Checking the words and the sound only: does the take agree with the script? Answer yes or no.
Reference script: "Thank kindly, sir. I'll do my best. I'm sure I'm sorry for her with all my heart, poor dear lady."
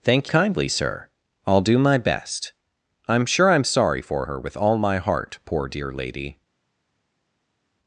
yes